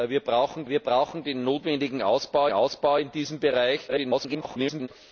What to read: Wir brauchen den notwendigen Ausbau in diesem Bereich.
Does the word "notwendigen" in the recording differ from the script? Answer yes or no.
no